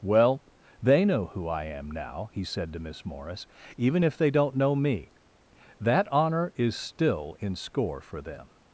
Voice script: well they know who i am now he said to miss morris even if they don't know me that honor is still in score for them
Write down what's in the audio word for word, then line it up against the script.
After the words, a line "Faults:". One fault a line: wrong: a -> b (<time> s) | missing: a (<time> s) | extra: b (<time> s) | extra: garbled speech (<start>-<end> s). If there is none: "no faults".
well they know who i am now he said to miss morris even if they don't know me that honor is still in score for them
Faults:
no faults